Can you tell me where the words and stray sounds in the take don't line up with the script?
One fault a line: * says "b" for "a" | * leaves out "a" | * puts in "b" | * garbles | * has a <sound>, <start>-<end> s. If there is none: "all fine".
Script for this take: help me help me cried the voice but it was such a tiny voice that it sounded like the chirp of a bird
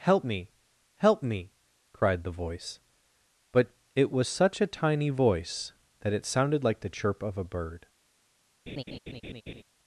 * has a laugh, 8.7-9.6 s